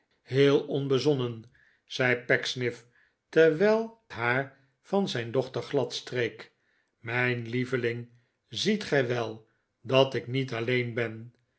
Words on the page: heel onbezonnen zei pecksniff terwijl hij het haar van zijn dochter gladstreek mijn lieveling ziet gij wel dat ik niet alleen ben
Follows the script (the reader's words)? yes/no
no